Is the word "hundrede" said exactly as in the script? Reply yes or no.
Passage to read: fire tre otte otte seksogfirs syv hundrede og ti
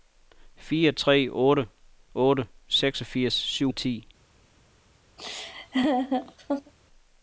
no